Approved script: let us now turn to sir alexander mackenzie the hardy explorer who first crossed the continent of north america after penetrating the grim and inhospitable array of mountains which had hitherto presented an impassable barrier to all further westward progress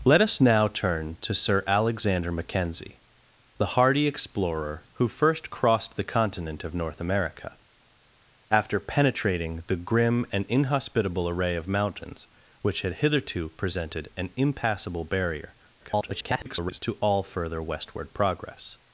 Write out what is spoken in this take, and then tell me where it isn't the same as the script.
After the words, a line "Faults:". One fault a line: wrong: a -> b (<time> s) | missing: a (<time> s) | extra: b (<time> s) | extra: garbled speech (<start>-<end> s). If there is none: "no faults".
let us now turn to sir alexander mackenzie the hardy explorer who first crossed the continent of north america after penetrating the grim and inhospitable array of mountains which had hitherto presented an impassable barrier [garbled] to all further westward progress
Faults:
extra: garbled speech (15.8-16.8 s)